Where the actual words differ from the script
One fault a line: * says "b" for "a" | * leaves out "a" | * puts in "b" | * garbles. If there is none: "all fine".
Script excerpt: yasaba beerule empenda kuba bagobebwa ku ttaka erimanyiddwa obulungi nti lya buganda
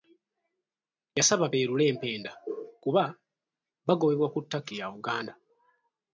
* leaves out "erimanyiddwa obulungi nti"